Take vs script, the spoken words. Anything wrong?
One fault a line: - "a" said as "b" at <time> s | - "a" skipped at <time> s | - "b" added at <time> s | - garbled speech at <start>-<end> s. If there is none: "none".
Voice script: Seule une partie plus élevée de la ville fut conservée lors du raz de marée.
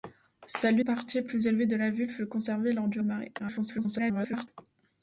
- "une" skipped at 0.8 s
- "raz" skipped at 3.0 s
- garbled speech at 3.4-4.5 s